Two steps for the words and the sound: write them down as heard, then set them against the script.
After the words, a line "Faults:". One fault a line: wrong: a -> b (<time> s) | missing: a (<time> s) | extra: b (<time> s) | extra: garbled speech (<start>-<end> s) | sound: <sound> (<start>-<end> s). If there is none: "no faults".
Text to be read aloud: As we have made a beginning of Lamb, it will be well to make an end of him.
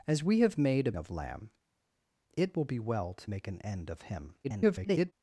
As we have made a of Lamb, it will be well to make an end of him. [garbled]
Faults:
missing: beginning (0.9 s)
extra: garbled speech (4.4-5.1 s)